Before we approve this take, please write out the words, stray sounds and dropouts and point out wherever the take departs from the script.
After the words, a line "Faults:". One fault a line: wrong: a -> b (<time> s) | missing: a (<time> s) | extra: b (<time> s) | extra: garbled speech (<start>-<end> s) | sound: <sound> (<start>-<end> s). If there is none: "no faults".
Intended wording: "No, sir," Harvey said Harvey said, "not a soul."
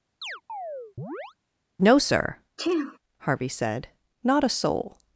"No, sir," Harvey said, "not a soul."
Faults:
sound: chirp (0.2-1.3 s)
sound: sneeze (2.6-3.0 s)
missing: Harvey said (3.9 s)